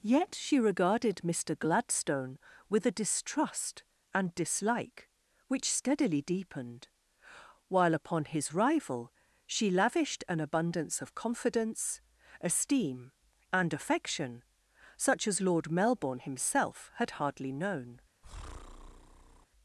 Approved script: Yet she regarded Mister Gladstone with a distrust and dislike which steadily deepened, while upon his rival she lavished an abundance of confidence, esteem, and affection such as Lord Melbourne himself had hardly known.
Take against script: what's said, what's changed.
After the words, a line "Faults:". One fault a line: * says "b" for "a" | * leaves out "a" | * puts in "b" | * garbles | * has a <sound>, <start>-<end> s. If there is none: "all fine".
Yet she regarded Mister Gladstone with a distrust and dislike which steadily deepened, while upon his rival she lavished an abundance of confidence, esteem, and affection such as Lord Melbourne himself had hardly known.
Faults:
* has a breath, 18.2-19.5 s